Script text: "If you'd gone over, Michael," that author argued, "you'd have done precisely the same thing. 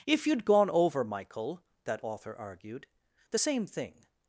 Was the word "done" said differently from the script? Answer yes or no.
yes